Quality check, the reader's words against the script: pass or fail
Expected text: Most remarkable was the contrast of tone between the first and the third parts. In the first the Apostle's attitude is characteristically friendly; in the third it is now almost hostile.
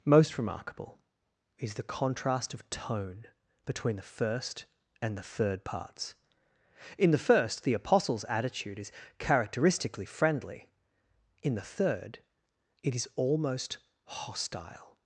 fail